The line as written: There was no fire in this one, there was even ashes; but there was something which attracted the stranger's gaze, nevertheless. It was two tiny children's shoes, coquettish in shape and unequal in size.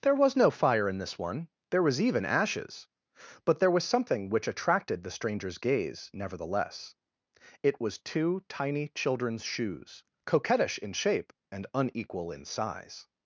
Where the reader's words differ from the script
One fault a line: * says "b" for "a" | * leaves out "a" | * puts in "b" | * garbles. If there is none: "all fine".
all fine